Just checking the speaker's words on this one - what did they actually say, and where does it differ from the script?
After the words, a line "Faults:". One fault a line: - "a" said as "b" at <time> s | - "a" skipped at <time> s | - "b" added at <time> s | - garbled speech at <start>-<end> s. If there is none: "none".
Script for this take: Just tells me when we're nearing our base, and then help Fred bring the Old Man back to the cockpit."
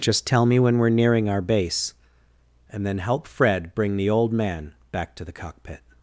Just tell me when we're nearing our base, and then help Fred bring the Old Man back to the cockpit."
Faults:
- "tells" said as "tell" at 0.2 s